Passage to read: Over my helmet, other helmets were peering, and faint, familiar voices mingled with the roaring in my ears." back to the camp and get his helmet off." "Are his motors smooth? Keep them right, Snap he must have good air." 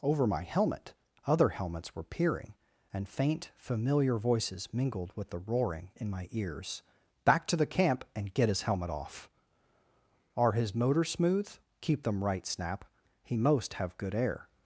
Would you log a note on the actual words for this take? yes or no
yes